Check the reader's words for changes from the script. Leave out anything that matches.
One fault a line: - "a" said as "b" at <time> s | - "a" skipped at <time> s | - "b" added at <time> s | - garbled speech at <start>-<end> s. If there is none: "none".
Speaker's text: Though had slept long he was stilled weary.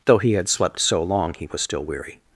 - "he" added at 0.2 s
- "so" added at 0.8 s
- "stilled" said as "still" at 1.6 s